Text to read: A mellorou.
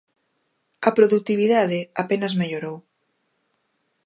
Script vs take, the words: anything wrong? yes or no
yes